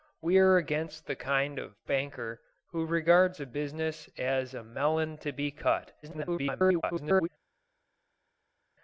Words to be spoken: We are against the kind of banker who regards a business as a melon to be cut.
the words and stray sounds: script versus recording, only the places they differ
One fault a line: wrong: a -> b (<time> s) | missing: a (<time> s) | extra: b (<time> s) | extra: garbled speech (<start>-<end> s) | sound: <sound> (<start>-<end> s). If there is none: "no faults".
extra: garbled speech (6.0-7.3 s)